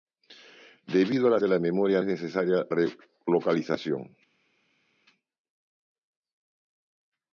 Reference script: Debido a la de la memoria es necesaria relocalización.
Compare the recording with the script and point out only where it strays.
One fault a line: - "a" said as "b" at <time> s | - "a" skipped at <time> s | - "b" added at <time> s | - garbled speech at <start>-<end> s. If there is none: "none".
none